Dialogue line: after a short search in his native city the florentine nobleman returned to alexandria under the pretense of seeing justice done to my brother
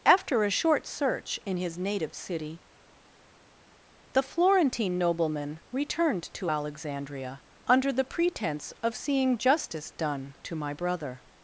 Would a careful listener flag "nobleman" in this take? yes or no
no